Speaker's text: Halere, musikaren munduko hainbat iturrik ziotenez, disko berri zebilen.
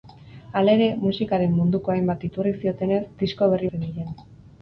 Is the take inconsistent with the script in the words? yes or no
no